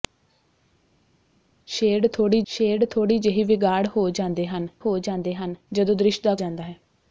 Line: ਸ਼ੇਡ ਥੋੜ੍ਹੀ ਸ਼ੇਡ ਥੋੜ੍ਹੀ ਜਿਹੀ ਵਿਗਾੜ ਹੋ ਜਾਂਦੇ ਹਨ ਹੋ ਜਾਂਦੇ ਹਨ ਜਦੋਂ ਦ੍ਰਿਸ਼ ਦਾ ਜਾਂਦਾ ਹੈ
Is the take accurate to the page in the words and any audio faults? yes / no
yes